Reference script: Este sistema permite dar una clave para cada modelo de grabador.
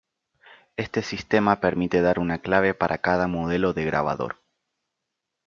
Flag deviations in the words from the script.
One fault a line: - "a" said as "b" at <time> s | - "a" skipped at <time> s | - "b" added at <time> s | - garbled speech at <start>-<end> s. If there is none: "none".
none